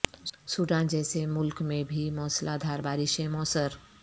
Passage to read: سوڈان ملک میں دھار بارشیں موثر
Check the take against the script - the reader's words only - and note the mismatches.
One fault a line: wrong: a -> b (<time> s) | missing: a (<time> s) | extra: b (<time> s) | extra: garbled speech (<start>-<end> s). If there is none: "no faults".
extra: جیسے (0.9 s)
extra: بھی موسلا (1.8 s)